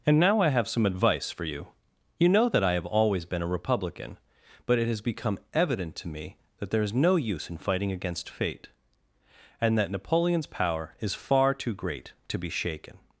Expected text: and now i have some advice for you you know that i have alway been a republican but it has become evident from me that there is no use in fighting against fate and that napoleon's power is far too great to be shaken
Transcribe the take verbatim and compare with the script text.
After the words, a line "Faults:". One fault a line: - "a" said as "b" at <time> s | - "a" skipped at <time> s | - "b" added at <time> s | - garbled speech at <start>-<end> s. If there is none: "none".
and now i have some advice for you you know that i have always been a republican but it has become evident to me that there is no use in fighting against fate and that napoleon's power is far too great to be shaken
Faults:
- "alway" said as "always" at 2.9 s
- "from" said as "to" at 6.0 s